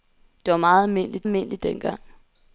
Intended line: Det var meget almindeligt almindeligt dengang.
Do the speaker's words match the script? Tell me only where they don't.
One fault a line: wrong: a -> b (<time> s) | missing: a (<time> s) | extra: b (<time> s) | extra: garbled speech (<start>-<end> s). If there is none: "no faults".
no faults